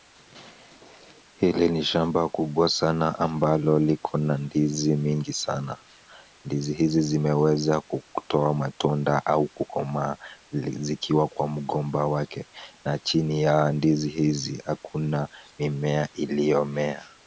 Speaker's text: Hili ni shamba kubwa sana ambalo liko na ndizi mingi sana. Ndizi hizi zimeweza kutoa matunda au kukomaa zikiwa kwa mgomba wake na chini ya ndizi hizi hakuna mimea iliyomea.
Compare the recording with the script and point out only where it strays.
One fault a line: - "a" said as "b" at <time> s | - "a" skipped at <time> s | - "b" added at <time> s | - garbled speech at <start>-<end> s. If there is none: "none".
none